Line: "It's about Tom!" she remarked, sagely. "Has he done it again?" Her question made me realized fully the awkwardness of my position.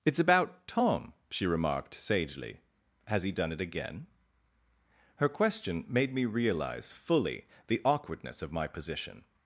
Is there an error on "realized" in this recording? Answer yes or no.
yes